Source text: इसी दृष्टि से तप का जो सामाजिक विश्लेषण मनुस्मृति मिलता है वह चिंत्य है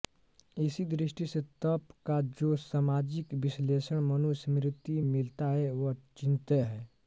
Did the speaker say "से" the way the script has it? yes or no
yes